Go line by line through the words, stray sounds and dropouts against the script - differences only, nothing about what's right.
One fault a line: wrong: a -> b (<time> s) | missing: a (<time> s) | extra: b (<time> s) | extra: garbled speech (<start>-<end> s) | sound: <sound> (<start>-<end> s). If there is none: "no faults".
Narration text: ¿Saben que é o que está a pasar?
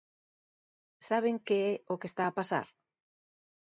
no faults